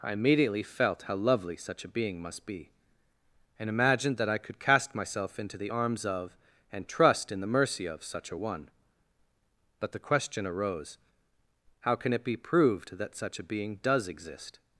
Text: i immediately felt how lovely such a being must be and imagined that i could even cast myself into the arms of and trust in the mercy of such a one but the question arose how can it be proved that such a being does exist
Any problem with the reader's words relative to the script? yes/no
yes